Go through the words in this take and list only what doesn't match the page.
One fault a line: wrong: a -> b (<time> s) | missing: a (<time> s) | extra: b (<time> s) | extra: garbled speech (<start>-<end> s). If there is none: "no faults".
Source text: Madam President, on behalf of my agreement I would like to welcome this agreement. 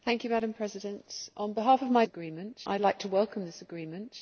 no faults